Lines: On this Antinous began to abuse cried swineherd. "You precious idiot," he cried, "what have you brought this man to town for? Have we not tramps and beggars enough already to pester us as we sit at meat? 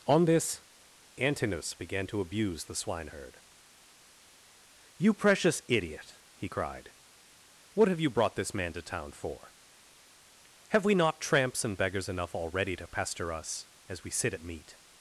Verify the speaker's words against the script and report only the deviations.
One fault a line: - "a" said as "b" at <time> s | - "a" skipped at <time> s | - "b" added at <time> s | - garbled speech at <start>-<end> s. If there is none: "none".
- "cried" said as "the" at 2.6 s